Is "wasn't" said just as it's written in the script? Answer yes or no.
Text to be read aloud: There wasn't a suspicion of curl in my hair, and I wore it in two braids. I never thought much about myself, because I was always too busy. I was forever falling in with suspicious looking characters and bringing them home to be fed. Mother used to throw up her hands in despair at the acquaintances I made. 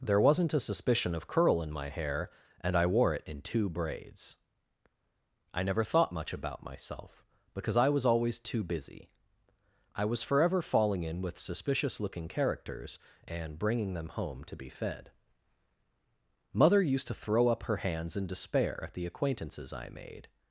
yes